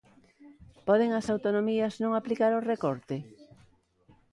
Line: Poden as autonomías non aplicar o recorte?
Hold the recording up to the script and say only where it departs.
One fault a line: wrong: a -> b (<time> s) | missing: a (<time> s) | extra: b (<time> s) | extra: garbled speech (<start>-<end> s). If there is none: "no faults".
no faults